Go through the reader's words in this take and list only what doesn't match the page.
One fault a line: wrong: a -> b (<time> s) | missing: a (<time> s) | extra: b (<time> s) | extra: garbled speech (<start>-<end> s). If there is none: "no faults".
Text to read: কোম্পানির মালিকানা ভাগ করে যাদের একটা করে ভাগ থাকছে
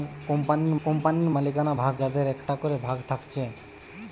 extra: কোম্পানির (0.8 s)
missing: করে (1.9 s)